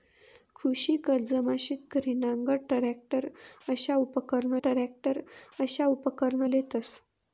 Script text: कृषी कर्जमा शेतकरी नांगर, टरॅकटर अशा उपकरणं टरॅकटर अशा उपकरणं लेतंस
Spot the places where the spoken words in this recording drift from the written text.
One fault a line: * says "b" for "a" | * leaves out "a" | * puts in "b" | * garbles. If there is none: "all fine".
all fine